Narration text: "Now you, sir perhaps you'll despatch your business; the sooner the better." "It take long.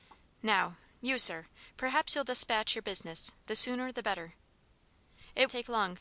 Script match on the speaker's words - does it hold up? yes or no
yes